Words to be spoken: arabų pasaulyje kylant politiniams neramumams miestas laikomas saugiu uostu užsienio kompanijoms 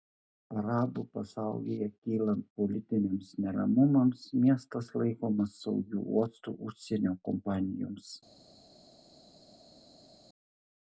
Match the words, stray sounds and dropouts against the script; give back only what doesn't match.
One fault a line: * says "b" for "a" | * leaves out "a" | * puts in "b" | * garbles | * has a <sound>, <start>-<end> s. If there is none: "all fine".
all fine